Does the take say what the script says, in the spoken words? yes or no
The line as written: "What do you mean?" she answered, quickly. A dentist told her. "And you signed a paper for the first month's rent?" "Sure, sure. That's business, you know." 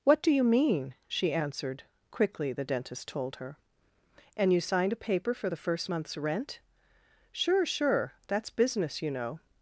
no